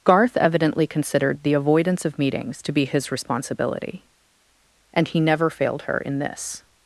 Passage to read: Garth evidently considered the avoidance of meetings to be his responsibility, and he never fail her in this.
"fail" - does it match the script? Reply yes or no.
no